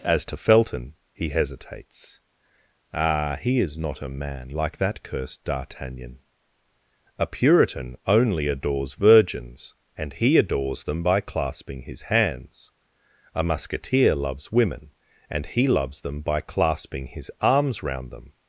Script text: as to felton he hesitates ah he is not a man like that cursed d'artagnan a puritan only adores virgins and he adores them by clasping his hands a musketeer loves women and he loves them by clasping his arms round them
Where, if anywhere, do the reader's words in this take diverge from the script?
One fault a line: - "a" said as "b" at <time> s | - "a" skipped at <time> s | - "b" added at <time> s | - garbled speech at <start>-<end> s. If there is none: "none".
none